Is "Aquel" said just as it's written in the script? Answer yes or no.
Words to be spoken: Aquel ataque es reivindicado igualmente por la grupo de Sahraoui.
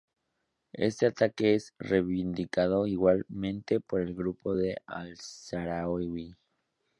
no